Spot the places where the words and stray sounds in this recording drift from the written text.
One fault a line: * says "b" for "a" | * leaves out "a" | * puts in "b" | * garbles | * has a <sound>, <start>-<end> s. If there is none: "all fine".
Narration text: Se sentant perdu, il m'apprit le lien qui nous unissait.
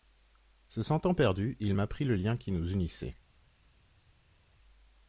all fine